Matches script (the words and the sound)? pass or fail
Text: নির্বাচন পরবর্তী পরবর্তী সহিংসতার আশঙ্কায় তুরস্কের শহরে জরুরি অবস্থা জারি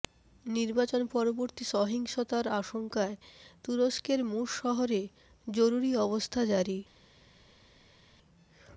fail